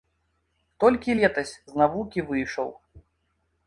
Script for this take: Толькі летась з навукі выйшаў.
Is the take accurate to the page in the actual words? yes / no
yes